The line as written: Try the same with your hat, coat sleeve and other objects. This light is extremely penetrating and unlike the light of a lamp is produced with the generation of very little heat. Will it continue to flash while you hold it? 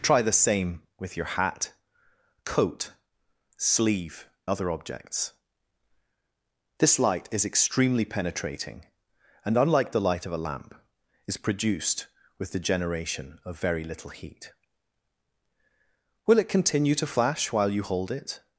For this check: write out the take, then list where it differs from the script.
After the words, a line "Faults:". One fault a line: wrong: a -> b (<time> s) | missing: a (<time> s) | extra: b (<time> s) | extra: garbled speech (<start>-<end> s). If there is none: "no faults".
Try the same with your hat, coat sleeve other objects. This light is extremely penetrating and unlike the light of a lamp is produced with the generation of very little heat. Will it continue to flash while you hold it?
Faults:
missing: and (4.3 s)